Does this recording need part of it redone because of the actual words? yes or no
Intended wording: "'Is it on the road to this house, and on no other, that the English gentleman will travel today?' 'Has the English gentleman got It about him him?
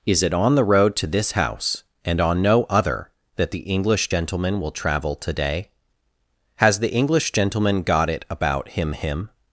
no